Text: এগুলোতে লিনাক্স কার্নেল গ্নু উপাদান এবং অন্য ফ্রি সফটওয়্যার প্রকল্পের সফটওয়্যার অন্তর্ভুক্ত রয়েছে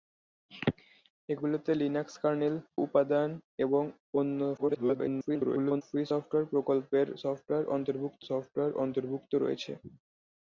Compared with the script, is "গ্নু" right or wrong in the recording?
wrong